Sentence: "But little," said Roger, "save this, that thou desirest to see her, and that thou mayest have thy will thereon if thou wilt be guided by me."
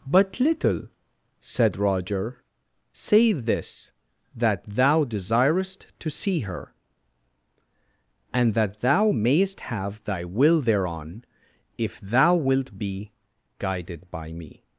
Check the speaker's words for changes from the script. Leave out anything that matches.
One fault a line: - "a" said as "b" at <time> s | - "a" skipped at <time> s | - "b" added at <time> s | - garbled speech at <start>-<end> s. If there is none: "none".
none